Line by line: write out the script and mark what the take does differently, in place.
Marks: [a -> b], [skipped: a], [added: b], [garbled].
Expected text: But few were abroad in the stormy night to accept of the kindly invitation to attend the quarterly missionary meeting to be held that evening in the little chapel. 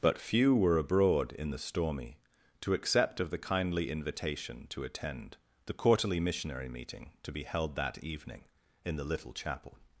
But few were abroad in the stormy [skipped: night] to accept of the kindly invitation to attend the quarterly missionary meeting to be held that evening in the little chapel.